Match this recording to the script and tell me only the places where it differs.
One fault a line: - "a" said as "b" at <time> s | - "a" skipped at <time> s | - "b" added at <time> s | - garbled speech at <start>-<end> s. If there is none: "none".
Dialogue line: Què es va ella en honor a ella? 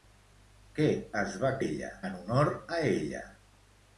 none